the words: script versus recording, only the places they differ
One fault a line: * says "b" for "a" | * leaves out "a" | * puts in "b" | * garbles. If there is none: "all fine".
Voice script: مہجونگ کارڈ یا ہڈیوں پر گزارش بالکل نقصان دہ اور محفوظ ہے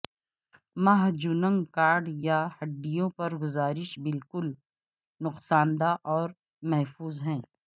all fine